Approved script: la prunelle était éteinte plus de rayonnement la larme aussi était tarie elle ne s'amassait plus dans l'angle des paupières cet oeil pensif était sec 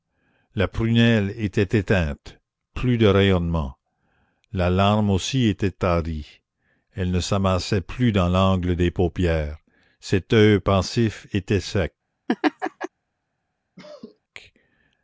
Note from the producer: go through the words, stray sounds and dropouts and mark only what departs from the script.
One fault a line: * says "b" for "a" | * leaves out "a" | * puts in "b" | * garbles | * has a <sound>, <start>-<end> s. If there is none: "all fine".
* has a laugh, 12.3-12.9 s
* has a cough, 13.8-14.2 s